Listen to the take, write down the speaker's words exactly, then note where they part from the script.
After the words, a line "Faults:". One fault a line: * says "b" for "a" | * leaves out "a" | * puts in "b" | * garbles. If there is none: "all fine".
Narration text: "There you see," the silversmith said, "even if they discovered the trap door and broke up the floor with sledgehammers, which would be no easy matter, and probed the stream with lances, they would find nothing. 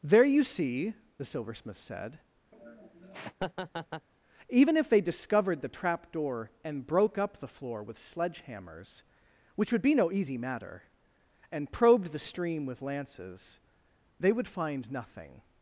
"There you see," the silversmith said, "even if they discovered the trap door and broke up the floor with sledgehammers, which would be no easy matter, and probed the stream with lances, they would find nothing.
Faults:
all fine